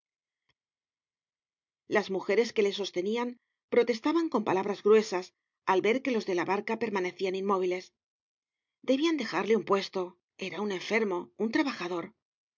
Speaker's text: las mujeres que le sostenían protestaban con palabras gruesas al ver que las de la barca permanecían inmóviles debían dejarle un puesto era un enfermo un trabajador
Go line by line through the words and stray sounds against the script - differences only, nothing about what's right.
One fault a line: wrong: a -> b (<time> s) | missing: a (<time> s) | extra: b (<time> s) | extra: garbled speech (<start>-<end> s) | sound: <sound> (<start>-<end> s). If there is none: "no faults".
wrong: las -> los (6.1 s)